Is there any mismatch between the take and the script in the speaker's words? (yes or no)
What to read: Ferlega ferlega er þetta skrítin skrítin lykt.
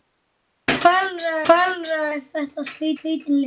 no